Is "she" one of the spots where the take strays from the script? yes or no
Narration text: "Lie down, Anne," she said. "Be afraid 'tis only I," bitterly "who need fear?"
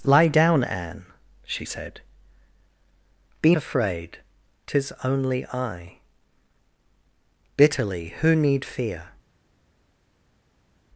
no